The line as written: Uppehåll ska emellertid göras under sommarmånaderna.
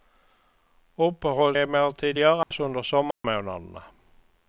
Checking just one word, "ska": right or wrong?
wrong